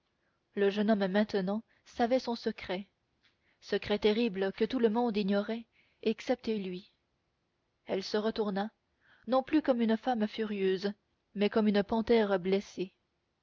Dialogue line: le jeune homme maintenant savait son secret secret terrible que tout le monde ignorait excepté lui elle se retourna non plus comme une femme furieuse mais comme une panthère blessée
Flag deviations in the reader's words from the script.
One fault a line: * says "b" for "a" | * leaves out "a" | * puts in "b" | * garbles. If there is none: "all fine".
all fine